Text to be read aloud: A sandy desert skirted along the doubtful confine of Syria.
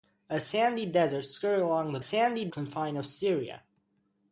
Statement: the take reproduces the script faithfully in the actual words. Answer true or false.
false